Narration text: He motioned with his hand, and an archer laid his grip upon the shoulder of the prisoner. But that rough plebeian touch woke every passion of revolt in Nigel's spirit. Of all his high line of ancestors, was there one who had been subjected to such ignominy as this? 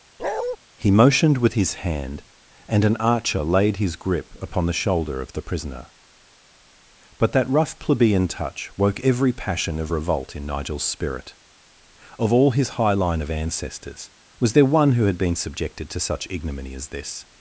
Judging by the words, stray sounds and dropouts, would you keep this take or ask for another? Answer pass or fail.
fail